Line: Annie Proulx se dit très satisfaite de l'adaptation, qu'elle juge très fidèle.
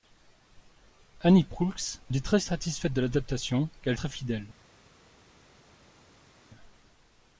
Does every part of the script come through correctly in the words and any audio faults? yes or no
no